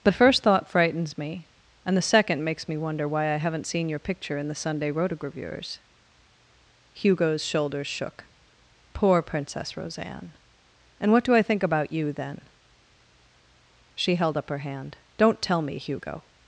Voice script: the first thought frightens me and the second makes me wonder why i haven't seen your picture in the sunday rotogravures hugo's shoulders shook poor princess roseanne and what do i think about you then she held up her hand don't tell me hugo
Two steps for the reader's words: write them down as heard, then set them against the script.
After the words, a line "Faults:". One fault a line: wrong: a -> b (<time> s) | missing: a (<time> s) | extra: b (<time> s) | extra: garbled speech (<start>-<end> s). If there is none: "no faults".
the first thought frightens me and the second makes me wonder why i haven't seen your picture in the sunday rotogravures hugo's shoulders shook poor princess roseanne and what do i think about you then she held up her hand don't tell me hugo
Faults:
no faults